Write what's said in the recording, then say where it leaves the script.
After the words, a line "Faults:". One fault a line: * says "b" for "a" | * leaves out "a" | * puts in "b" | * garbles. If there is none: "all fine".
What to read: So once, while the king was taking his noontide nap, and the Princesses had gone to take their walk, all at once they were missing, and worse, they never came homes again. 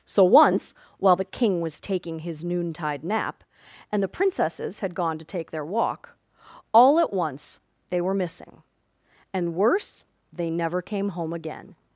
So once, while the king was taking his noontide nap, and the Princesses had gone to take their walk, all at once they were missing, and worse, they never came home again.
Faults:
* says "home" for "homes"